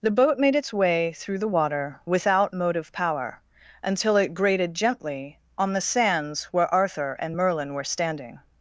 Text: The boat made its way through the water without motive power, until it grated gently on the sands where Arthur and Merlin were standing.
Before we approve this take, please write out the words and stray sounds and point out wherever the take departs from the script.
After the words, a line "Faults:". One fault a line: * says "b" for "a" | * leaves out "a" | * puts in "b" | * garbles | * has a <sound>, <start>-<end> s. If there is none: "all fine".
The boat made its way through the water without motive power, until it grated gently on the sands where Arthur and Merlin were standing.
Faults:
all fine